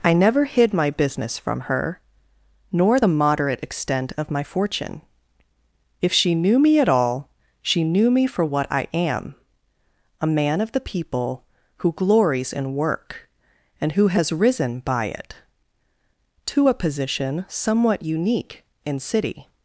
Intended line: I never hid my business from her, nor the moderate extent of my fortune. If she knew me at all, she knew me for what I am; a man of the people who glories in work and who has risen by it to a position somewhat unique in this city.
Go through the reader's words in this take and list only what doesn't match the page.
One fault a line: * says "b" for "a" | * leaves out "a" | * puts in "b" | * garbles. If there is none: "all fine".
* leaves out "this"